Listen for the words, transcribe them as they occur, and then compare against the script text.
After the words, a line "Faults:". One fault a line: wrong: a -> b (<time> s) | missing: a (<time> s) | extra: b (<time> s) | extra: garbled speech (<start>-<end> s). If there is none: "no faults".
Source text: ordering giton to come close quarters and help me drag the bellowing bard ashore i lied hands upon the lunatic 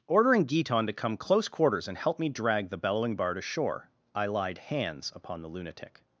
ordering giton to come close quarters and help me drag the bellowing bard ashore i lied hands upon the lunatic
Faults:
no faults